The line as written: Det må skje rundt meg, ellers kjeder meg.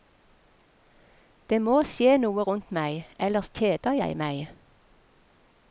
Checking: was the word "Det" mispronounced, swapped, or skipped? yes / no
no